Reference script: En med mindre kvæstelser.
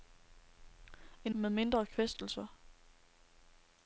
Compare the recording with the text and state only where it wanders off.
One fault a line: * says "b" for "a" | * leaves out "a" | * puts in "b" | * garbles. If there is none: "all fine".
all fine